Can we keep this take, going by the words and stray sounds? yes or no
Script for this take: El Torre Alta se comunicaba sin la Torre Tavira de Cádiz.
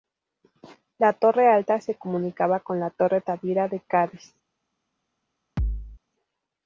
no